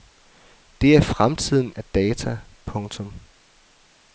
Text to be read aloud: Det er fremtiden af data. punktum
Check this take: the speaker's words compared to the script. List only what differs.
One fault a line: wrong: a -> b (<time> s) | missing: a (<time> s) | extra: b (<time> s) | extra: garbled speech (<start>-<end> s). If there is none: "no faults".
no faults